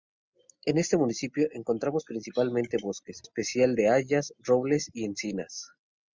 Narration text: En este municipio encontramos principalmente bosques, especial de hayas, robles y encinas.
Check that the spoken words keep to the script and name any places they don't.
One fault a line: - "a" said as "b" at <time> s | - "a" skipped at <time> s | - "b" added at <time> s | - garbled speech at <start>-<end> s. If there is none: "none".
none